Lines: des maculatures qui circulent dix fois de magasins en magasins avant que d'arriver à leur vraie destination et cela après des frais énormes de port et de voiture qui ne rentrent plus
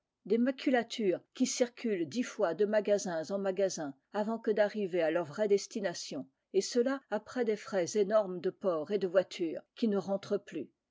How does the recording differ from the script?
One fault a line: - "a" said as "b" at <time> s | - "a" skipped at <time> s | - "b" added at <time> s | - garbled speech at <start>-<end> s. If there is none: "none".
none